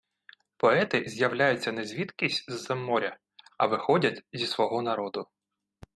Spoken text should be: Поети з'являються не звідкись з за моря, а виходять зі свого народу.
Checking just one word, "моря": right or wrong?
right